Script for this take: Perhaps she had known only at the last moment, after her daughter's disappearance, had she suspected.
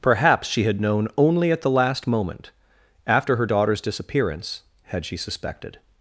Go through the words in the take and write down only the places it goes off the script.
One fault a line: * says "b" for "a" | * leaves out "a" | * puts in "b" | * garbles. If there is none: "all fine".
all fine